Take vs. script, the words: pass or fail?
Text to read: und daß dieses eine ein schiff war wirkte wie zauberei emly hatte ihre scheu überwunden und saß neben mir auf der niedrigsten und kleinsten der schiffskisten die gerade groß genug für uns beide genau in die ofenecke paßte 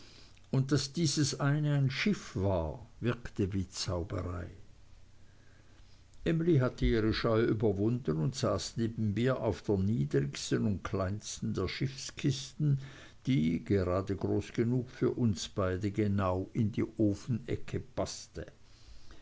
pass